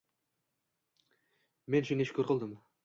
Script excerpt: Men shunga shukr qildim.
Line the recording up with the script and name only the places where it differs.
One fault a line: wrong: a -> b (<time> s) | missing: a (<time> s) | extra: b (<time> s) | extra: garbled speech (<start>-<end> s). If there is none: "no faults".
no faults